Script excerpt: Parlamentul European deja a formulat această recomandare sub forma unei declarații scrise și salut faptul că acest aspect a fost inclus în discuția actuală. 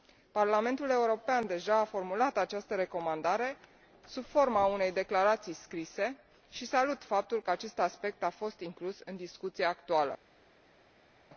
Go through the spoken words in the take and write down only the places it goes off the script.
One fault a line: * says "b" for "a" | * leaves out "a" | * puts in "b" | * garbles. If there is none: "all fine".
all fine